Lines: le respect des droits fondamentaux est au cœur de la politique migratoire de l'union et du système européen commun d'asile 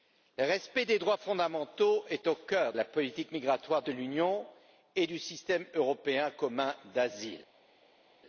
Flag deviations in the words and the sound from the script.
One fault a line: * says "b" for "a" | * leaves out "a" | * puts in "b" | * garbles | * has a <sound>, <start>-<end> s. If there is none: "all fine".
* leaves out "de"